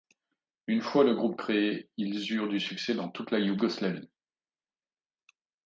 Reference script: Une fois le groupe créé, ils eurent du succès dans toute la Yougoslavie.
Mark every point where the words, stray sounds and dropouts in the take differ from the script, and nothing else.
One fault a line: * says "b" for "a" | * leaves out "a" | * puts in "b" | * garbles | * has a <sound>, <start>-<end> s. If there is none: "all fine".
all fine